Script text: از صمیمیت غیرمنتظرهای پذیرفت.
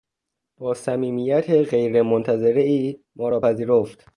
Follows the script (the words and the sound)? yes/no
no